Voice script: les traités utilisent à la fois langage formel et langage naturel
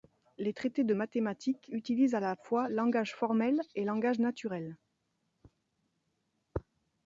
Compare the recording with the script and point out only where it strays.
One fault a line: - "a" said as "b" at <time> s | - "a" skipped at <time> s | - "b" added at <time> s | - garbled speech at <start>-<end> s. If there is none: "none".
- "de mathématiques" added at 0.8 s